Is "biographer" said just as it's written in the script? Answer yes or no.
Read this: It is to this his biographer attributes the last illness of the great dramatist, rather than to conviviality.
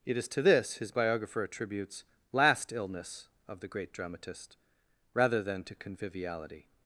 yes